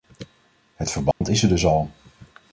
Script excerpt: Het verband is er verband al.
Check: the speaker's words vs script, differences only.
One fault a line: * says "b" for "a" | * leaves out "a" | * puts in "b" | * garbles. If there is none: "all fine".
* says "dus" for "verband"